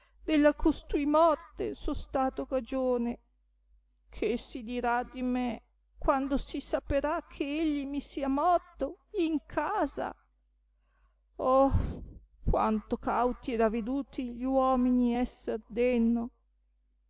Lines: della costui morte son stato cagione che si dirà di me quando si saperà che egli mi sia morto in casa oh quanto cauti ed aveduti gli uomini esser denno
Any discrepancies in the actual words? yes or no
no